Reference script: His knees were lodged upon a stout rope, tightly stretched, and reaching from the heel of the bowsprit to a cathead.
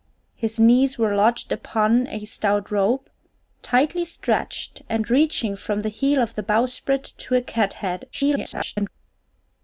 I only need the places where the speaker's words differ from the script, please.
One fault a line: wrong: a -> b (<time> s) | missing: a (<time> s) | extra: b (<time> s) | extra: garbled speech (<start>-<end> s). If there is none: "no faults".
extra: garbled speech (8.1-8.9 s)